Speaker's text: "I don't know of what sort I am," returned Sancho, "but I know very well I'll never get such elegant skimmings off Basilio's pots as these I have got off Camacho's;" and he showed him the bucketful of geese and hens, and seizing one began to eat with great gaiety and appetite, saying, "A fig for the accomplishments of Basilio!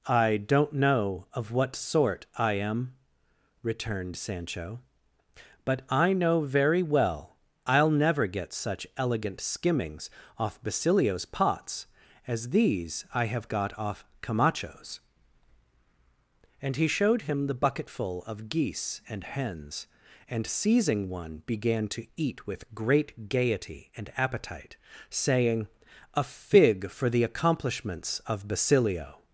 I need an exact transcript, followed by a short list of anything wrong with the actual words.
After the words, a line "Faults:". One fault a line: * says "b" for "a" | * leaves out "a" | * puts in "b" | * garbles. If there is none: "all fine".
"I don't know of what sort I am," returned Sancho, "but I know very well I'll never get such elegant skimmings off Basilio's pots as these I have got off Camacho's;" and he showed him the bucketful of geese and hens, and seizing one began to eat with great gaiety and appetite, saying, "A fig for the accomplishments of Basilio!
Faults:
all fine